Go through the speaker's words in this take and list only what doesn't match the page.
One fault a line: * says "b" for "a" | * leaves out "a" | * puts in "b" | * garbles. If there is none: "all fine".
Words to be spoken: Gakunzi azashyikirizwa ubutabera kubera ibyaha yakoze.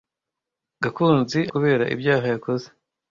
* leaves out "azashyikirizwa ubutabera"